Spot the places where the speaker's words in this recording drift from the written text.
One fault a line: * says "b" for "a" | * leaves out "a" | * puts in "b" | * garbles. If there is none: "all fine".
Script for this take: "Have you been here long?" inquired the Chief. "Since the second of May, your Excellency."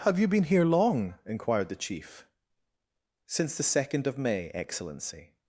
* leaves out "your"